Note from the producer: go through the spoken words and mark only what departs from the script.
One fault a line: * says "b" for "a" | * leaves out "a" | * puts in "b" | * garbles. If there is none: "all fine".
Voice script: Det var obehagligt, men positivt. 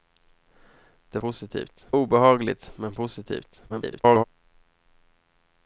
* says "positivt" for "var"
* garbles